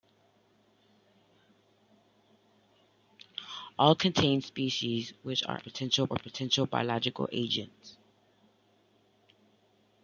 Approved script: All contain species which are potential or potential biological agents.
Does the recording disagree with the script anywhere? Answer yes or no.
no